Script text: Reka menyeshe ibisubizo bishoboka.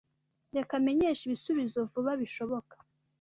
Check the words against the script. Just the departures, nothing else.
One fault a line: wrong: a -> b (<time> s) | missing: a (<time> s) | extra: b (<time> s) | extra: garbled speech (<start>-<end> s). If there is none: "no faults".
extra: vuba (1.9 s)